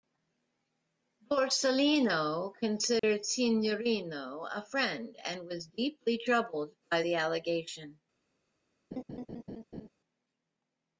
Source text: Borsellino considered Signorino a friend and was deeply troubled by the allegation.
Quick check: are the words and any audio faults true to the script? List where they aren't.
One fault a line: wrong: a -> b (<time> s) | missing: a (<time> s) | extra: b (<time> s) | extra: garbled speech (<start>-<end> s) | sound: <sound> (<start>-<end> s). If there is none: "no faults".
sound: dropout (3.0-3.0 s)
sound: laugh (8.9-9.9 s)